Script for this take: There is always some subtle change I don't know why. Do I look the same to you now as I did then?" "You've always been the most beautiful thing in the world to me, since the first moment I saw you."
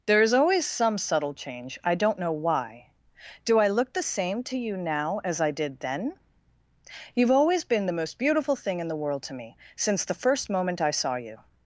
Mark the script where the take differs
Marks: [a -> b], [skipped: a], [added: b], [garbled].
There is always some subtle change I don't know why. Do I look the same to you now as I did then?" "You've always been the most beautiful thing in the world to me, since the first moment I saw you."